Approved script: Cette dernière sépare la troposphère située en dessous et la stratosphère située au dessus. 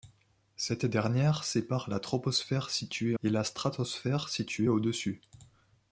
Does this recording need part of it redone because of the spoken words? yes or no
yes